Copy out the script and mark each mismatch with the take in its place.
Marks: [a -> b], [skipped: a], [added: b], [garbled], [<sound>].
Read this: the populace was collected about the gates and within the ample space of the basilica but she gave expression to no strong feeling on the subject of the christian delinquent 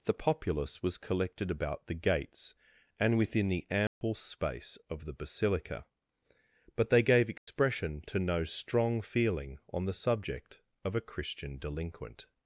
the populace was collected about the gates and within the ample [dropout] space of the basilica but [she -> they] gave expression [dropout] to no strong feeling on the subject of [the -> a] christian delinquent